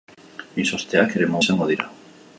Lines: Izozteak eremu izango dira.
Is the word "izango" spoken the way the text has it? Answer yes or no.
yes